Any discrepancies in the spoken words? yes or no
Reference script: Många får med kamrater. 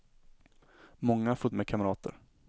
no